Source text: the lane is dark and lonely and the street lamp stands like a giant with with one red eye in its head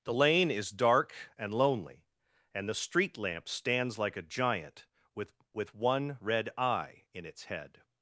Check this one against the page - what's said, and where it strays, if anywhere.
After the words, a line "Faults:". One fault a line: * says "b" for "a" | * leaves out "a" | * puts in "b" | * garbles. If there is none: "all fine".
the lane is dark and lonely and the street lamp stands like a giant with with one red eye in its head
Faults:
all fine